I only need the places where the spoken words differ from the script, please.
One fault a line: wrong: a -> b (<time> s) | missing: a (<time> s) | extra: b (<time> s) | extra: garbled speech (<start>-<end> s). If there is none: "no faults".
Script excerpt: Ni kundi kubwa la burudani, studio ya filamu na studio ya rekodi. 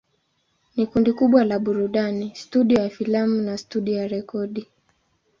no faults